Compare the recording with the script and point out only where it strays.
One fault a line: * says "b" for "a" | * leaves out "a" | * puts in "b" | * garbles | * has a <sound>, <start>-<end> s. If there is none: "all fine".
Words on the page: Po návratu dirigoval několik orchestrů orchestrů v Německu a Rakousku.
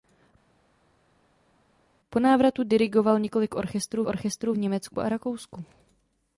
all fine